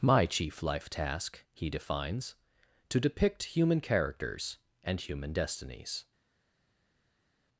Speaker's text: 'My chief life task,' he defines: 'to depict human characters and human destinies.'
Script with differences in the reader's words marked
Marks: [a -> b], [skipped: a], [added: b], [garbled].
'My chief life task,' he defines: 'to depict human characters and human destinies.'